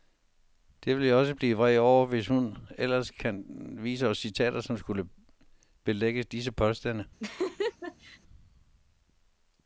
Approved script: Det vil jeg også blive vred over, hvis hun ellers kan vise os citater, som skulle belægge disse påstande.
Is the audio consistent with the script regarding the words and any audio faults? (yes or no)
no